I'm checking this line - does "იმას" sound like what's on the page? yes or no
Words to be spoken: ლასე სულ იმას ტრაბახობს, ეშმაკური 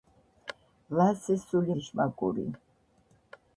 no